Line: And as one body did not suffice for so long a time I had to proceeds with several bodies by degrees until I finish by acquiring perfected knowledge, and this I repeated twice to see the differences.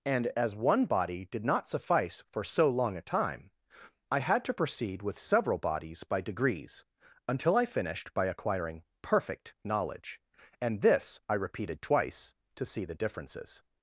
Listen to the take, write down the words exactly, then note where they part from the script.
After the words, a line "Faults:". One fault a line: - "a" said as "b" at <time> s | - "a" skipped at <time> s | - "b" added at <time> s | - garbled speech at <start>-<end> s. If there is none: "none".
And as one body did not suffice for so long a time I had to proceed with several bodies by degrees until I finished by acquiring perfect knowledge, and this I repeated twice to see the differences.
Faults:
- "proceeds" said as "proceed" at 4.5 s
- "finish" said as "finished" at 7.7 s
- "perfected" said as "perfect" at 9.0 s